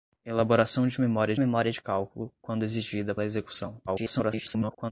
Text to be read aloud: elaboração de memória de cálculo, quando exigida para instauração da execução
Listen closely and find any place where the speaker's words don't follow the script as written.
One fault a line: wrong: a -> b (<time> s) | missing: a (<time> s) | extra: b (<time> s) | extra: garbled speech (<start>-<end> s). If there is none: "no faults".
extra: memória (1.4 s)
missing: para instauração (3.1 s)
extra: garbled speech (3.9-4.9 s)